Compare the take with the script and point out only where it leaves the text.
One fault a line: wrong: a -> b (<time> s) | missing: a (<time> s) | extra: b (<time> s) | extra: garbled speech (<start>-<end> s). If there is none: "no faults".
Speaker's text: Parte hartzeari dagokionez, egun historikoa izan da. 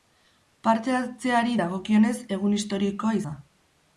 missing: izan (3.2 s)